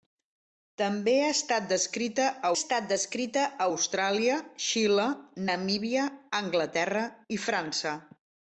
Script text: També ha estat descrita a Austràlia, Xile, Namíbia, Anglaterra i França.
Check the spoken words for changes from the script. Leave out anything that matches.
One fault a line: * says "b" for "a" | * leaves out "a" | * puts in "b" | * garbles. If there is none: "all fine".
* puts in "estat descrita a"